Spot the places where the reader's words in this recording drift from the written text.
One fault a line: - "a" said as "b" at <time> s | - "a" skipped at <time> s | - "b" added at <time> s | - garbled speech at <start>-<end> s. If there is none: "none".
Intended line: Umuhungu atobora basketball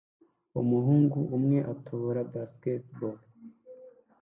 - "umwe" added at 1.4 s